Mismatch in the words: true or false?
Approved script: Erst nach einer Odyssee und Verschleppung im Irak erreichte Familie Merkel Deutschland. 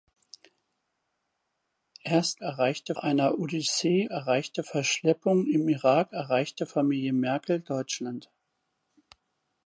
true